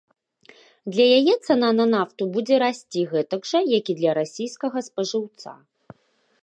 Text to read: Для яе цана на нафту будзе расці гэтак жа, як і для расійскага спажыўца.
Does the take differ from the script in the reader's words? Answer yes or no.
no